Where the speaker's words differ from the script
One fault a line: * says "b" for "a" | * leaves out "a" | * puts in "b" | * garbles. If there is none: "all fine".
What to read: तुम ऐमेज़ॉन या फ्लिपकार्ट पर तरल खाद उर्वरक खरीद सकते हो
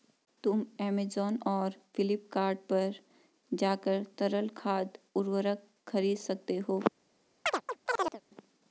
* says "और" for "या"
* puts in "जाकर"